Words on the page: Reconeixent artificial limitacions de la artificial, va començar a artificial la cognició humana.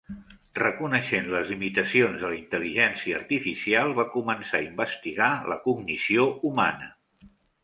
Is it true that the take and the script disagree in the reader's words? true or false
true